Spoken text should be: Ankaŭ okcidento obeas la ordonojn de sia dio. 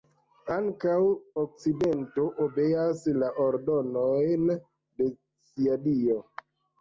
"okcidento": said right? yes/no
yes